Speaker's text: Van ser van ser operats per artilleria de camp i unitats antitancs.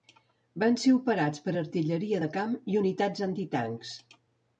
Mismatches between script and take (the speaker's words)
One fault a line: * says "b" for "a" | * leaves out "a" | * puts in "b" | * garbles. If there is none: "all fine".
* leaves out "van ser"